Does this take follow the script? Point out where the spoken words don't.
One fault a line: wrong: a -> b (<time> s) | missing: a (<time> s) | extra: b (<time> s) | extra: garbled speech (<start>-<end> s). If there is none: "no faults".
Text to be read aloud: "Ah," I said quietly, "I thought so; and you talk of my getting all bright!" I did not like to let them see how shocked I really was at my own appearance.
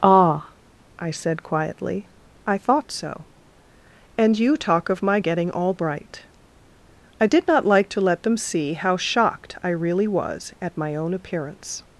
no faults